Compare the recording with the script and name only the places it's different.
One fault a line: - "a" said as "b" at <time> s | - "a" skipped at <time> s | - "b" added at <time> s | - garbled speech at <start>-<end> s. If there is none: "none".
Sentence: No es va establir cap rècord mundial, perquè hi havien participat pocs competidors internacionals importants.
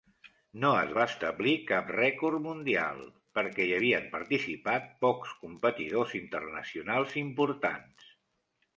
none